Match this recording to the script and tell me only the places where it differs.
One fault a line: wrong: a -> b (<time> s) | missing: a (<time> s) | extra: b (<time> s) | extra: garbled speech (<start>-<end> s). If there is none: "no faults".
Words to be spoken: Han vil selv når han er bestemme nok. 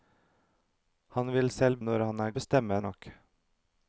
no faults